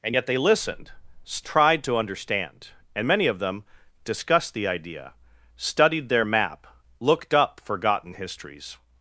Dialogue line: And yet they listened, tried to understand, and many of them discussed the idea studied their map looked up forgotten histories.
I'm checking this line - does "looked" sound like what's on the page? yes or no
yes